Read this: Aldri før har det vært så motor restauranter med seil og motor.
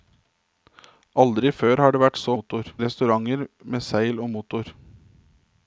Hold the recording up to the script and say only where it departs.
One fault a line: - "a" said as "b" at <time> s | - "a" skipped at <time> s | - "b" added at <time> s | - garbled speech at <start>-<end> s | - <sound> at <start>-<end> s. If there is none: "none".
none